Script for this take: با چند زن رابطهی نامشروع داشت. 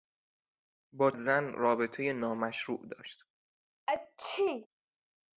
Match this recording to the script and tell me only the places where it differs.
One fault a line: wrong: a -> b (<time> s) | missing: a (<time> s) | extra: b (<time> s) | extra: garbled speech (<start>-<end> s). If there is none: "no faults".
missing: چند (1.1 s)